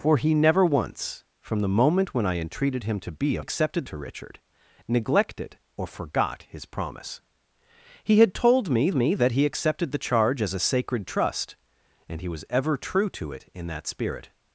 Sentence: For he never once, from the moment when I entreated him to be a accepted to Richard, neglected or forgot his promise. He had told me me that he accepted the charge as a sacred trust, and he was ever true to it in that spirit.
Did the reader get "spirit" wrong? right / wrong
right